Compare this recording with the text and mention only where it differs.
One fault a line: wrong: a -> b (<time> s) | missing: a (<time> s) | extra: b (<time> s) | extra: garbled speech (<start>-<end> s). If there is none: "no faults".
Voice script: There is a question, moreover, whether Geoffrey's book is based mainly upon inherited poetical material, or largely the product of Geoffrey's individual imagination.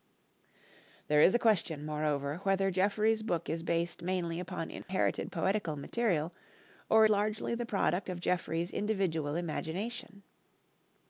no faults